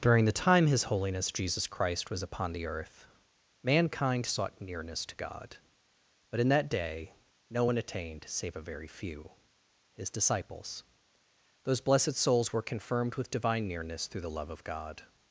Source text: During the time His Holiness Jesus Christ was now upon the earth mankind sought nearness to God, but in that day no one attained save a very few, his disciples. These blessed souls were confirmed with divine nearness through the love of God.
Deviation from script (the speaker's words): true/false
true